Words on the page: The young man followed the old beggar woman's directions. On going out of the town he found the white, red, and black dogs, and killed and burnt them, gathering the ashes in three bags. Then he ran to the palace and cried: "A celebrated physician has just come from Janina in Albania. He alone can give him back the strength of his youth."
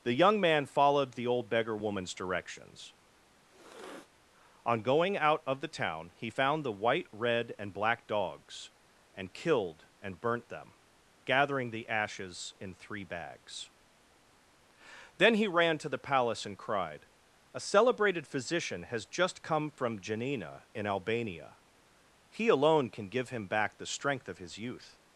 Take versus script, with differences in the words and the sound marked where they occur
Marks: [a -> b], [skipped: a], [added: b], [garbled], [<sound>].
The young man followed the old beggar woman's directions. [sniff] On going out of the town he found the white, red, and black dogs, and killed and burnt them, gathering the ashes in three bags. Then he ran to the palace and cried: "A celebrated physician has just come from Janina in Albania. He alone can give him back the strength of his youth."